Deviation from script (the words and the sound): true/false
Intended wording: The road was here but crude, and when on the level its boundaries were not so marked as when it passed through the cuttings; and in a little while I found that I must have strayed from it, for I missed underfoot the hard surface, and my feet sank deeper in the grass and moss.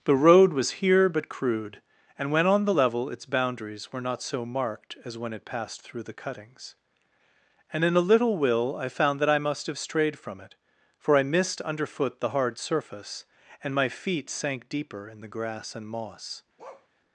true